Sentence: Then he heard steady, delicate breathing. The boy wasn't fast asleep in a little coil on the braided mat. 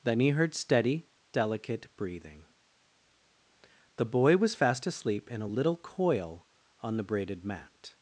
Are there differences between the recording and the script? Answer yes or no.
yes